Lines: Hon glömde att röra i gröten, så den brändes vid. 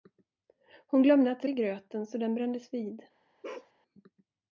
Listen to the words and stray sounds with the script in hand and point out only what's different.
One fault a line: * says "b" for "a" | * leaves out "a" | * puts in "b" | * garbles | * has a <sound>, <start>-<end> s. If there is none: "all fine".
* leaves out "röra"
* has a bark, 3.4-3.7 s